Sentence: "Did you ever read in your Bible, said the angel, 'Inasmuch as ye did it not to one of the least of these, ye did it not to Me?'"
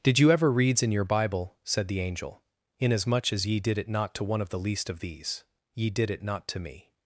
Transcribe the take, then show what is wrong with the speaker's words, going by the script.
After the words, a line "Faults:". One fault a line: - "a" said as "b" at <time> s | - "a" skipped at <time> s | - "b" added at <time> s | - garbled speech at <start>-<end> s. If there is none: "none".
"Did you ever reads in your Bible, said the angel, 'Inasmuch as ye did it not to one of the least of these, ye did it not to Me?'"
Faults:
- "read" said as "reads" at 0.5 s